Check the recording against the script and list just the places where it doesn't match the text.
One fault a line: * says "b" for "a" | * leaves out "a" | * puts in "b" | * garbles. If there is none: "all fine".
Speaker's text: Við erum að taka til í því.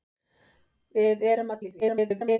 * leaves out "taka til"
* garbles